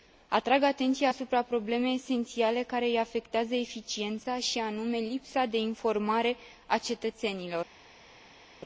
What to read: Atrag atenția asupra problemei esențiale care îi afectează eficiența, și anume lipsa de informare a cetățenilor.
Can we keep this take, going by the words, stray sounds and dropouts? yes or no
yes